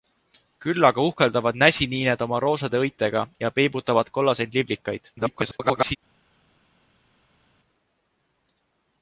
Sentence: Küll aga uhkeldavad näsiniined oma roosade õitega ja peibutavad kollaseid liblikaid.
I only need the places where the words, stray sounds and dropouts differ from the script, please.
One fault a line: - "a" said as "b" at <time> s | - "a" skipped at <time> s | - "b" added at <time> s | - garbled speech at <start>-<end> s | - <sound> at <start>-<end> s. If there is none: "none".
- garbled speech at 5.2-6.0 s